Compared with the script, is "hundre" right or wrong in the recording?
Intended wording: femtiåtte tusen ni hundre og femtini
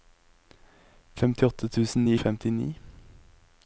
wrong